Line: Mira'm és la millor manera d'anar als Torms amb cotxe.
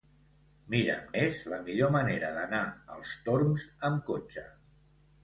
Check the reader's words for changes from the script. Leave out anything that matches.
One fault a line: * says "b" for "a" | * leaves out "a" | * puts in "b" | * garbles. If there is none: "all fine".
all fine